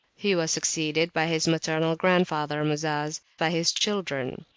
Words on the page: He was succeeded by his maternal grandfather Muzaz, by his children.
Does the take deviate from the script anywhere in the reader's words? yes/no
no